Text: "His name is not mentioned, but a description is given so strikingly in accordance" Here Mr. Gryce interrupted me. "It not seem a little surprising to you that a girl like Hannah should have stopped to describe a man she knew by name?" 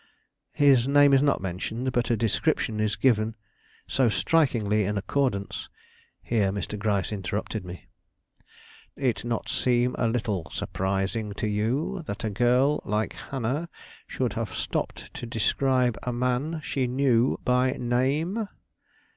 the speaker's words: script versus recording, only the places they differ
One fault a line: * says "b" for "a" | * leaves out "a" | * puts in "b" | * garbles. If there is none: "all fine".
all fine